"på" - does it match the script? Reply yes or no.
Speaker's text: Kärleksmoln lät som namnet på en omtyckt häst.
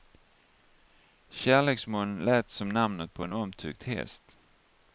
yes